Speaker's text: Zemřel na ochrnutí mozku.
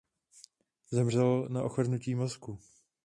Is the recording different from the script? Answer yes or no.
no